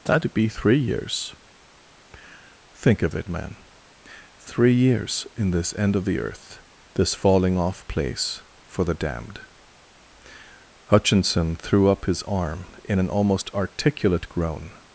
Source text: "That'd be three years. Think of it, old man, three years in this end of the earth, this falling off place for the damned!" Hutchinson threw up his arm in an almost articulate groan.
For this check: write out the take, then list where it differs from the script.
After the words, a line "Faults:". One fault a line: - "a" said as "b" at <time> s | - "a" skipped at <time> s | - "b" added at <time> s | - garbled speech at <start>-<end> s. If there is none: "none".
"That'd be three years. Think of it, man, three years in this end of the earth, this falling off place for the damned!" Hutchinson threw up his arm in an almost articulate groan.
Faults:
- "old" skipped at 3.3 s